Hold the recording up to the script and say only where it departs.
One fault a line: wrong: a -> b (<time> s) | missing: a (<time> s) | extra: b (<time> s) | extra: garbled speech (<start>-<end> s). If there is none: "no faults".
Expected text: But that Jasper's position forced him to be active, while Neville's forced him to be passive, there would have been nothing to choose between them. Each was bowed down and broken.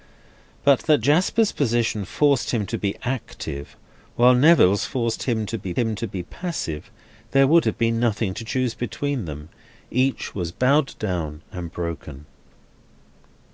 extra: him to be (5.7 s)